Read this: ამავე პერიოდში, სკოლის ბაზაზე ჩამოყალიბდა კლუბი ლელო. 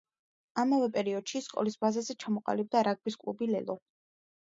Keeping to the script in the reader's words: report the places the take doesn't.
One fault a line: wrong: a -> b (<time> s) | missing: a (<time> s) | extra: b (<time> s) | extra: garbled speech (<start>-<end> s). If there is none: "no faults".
extra: რაგბის (2.9 s)